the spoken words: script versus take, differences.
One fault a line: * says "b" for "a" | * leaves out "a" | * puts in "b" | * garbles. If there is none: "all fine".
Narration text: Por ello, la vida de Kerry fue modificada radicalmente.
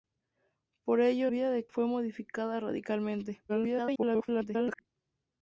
* leaves out "la"
* leaves out "Kerry"
* garbles